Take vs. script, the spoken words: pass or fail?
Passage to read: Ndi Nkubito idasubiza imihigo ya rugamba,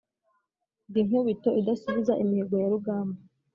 pass